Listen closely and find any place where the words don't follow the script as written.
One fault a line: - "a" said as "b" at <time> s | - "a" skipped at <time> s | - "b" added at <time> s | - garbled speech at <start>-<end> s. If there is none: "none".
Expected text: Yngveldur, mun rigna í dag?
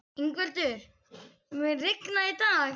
none